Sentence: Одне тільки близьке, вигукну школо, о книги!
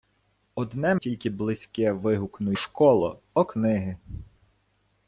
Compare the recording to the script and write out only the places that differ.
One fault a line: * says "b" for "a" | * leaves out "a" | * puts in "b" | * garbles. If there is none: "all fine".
all fine